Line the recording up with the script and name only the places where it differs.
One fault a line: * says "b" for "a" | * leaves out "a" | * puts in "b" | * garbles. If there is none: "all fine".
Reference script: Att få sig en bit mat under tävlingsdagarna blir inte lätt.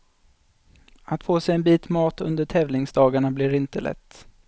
all fine